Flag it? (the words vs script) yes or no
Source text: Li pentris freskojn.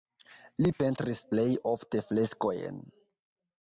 yes